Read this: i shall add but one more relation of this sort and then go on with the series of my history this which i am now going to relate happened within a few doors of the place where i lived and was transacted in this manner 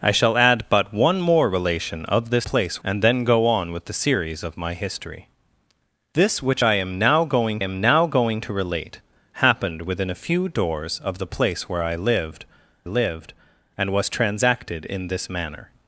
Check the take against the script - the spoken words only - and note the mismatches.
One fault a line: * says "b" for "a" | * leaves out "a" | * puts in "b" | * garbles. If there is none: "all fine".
* says "place" for "sort"
* puts in "am now going"
* puts in "lived"